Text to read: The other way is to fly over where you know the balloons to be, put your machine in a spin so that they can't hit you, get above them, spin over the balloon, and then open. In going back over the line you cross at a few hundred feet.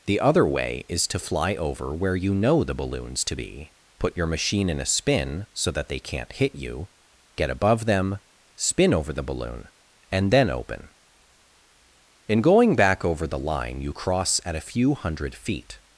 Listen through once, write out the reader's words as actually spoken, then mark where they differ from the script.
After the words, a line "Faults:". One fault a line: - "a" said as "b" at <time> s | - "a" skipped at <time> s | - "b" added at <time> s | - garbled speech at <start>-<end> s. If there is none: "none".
The other way is to fly over where you know the balloons to be, put your machine in a spin so that they can't hit you, get above them, spin over the balloon, and then open. In going back over the line you cross at a few hundred feet.
Faults:
none